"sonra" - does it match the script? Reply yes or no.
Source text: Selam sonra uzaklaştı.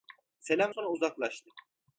yes